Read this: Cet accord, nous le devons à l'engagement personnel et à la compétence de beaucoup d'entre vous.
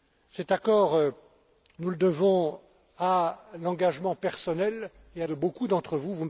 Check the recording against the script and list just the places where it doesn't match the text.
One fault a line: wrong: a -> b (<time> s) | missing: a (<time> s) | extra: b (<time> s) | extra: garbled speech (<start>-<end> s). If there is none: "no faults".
missing: la compétence (5.3 s)